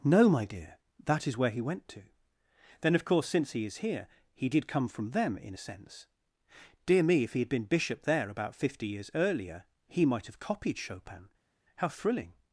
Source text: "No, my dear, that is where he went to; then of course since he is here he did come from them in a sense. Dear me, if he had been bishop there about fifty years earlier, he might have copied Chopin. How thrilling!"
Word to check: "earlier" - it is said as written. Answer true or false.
true